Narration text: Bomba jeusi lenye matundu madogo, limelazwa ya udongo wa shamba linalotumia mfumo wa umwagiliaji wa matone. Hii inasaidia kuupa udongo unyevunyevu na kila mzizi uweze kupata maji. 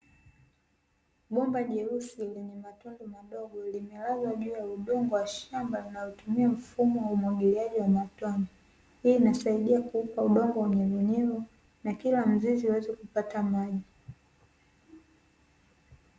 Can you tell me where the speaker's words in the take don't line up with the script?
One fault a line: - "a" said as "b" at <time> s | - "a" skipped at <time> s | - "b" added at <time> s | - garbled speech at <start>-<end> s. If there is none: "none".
- "juu" added at 4.3 s